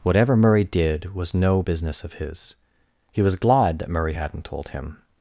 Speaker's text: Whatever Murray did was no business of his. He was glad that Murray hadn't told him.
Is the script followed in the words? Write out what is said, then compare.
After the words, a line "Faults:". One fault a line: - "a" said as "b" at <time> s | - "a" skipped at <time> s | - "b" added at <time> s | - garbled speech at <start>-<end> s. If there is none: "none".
Whatever Murray did was no business of his. He was glad that Murray hadn't told him.
Faults:
none